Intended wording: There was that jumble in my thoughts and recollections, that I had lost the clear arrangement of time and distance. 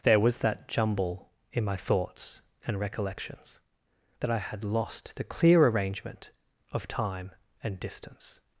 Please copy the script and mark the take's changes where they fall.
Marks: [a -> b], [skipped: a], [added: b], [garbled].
There was that jumble in my thoughts and recollections, that I had lost the clear arrangement of time and distance.